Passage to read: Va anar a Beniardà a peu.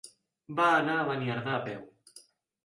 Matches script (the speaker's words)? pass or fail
pass